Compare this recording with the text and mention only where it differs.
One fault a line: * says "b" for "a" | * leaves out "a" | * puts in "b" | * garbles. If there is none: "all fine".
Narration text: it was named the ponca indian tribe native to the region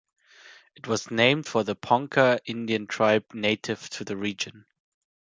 * puts in "for"